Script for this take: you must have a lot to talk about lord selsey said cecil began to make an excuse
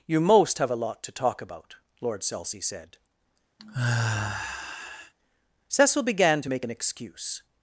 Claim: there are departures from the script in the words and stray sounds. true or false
true